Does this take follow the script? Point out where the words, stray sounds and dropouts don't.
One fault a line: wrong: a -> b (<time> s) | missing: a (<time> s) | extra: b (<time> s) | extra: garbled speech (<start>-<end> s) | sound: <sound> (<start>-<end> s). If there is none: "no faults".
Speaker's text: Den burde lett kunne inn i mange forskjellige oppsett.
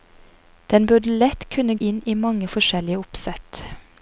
no faults